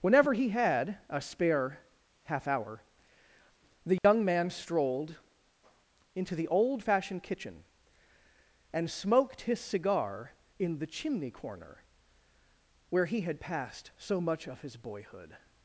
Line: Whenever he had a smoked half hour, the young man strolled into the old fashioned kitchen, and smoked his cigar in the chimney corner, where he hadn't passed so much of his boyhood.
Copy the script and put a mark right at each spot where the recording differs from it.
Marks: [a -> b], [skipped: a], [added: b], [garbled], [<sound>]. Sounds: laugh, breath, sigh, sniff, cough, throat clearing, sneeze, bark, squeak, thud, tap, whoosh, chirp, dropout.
Whenever he had a [smoked -> spare] half hour, the young [dropout] man strolled into the old fashioned kitchen, and smoked his cigar in the chimney corner, where he [hadn't -> had] passed so much of his boyhood.